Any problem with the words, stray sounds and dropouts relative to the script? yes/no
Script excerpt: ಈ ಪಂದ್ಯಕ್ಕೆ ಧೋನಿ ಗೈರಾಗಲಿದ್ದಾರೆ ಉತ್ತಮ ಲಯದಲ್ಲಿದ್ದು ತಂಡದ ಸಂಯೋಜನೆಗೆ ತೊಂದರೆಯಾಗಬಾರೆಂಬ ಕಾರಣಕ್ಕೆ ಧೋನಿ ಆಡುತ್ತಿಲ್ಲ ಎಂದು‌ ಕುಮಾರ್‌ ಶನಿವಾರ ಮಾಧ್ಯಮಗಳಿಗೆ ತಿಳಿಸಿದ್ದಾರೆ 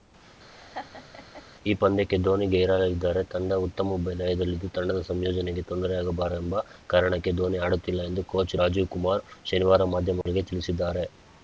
yes